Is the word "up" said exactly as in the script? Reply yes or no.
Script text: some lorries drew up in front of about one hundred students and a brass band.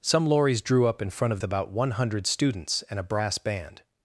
yes